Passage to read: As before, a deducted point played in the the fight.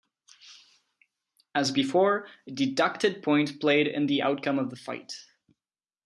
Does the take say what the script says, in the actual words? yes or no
no